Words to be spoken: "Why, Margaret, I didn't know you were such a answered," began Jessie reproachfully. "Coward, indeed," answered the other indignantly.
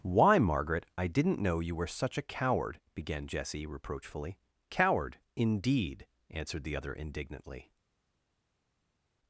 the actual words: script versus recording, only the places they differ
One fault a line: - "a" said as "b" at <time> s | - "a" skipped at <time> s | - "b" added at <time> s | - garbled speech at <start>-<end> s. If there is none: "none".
- "answered" said as "coward" at 2.2 s